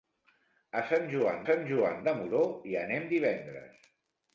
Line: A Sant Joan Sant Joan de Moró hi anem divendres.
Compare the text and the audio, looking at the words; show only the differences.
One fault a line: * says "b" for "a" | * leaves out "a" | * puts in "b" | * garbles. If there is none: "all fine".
all fine